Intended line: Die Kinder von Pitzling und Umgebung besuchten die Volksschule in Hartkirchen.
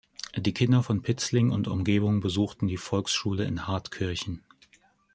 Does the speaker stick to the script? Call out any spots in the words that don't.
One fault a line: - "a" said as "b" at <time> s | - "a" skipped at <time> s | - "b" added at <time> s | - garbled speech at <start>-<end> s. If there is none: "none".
none